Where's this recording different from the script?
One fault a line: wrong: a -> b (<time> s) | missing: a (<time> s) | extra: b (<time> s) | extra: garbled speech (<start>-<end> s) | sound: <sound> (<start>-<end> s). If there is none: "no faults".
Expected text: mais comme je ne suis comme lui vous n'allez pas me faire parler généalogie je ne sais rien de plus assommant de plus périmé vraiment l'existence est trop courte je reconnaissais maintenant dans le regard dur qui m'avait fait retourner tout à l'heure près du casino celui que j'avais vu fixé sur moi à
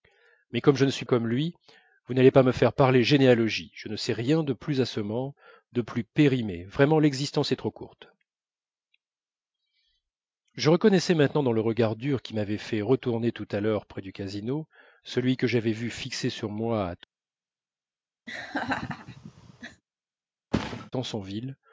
sound: laugh (18.3-19.8 s)
sound: thud (20.5-20.9 s)